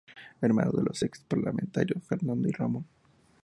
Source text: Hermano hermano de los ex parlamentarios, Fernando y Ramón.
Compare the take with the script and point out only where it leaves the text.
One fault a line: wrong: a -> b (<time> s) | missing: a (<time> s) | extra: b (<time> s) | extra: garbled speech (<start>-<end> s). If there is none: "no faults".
missing: hermano (0.7 s)